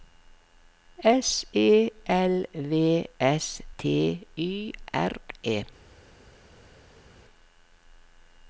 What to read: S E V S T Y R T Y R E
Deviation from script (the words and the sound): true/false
true